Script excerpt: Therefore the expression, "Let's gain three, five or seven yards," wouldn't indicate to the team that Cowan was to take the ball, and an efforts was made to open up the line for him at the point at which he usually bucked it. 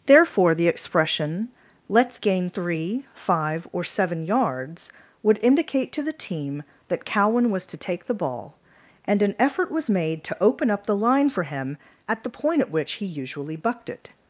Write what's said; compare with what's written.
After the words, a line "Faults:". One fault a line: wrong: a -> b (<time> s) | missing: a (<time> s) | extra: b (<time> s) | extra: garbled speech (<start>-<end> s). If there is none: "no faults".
Therefore the expression, "Let's gain three, five or seven yards," would indicate to the team that Cowan was to take the ball, and an effort was made to open up the line for him at the point at which he usually bucked it.
Faults:
wrong: wouldn't -> would (5.2 s)
wrong: efforts -> effort (9.4 s)